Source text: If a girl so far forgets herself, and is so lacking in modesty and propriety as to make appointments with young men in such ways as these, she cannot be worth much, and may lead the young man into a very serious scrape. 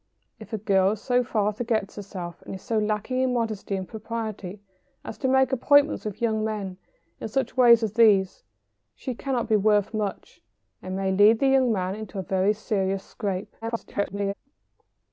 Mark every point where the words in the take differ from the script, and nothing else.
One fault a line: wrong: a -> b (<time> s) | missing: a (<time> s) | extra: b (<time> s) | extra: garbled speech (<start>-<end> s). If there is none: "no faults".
extra: garbled speech (13.6-14.3 s)